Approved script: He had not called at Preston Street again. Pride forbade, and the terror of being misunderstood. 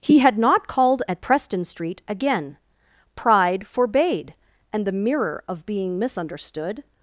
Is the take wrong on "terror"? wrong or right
wrong